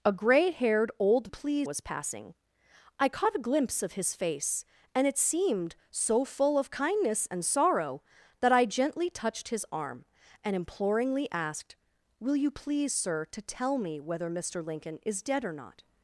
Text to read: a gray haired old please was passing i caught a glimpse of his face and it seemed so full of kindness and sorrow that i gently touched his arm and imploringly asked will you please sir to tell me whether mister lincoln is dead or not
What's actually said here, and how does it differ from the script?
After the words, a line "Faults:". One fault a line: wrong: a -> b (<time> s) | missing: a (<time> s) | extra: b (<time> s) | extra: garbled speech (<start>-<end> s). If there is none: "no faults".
a gray haired old please was passing i caught a glimpse of his face and it seemed so full of kindness and sorrow that i gently touched his arm and imploringly asked will you please sir to tell me whether mister lincoln is dead or not
Faults:
no faults